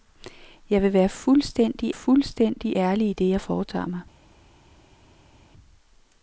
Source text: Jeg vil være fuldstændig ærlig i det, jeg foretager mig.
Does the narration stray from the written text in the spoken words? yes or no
yes